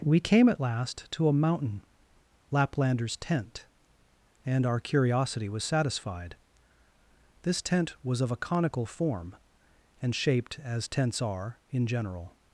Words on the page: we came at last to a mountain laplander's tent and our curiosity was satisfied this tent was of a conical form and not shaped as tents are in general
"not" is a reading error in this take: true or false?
true